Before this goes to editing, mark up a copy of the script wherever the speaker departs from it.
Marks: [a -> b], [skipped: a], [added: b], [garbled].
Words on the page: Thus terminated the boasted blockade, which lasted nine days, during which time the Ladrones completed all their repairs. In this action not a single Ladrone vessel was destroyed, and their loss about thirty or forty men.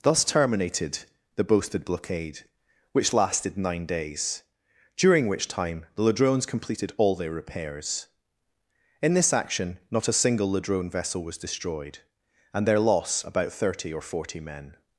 Thus terminated the boasted blockade, which lasted nine days, during which time the Ladrones completed all their repairs. In this action not a single Ladrone vessel was destroyed, and their loss about thirty or forty men.